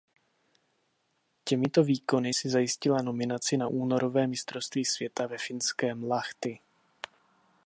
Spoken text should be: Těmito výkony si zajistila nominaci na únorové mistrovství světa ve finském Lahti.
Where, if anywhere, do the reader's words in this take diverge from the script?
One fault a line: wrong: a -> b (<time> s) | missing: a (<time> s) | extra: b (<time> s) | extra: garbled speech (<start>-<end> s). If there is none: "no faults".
no faults